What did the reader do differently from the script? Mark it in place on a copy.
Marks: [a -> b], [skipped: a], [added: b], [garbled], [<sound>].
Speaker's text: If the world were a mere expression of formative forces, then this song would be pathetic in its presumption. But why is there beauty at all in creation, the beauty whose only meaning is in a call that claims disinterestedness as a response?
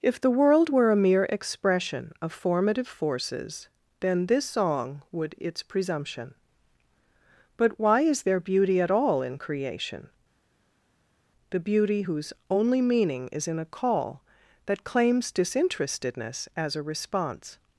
If the world were a mere expression of formative forces, then this song would [skipped: be pathetic in] its presumption. But why is there beauty at all in creation, the beauty whose only meaning is in a call that claims disinterestedness as a response?